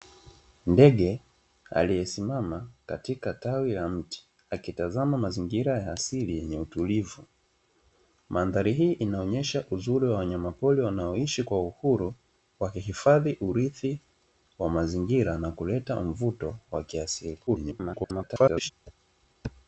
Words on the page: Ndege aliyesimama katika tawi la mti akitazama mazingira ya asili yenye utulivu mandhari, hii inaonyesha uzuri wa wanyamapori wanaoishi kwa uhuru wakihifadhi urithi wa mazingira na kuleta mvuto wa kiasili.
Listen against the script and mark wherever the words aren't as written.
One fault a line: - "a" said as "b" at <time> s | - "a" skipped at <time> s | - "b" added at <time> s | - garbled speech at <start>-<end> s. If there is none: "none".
- garbled speech at 17.5-18.7 s